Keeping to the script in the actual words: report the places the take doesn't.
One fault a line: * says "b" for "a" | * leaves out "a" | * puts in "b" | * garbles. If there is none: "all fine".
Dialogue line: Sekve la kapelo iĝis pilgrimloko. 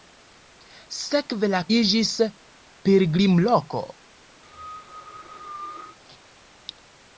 * leaves out "kapelo"